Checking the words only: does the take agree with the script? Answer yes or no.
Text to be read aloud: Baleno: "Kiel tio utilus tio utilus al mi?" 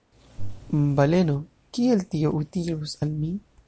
no